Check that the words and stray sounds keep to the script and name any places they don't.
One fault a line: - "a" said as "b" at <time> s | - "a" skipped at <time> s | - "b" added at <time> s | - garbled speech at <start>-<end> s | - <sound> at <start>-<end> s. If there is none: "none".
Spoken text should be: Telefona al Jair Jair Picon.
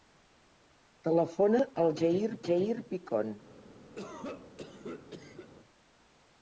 - cough at 3.9-5.5 s